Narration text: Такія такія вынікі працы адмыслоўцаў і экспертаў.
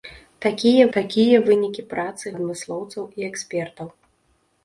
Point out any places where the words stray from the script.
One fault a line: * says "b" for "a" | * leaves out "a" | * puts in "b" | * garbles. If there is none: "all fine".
all fine